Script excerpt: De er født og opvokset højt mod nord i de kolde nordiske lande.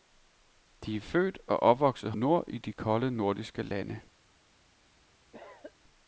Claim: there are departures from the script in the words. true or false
true